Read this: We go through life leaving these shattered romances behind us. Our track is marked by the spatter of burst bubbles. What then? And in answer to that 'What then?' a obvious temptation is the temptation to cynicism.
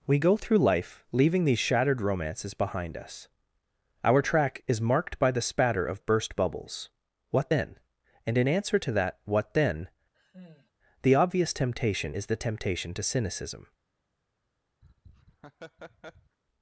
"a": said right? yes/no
no